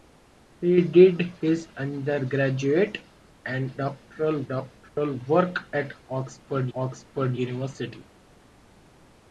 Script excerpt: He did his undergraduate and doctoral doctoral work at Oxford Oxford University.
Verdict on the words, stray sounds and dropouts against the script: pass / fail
fail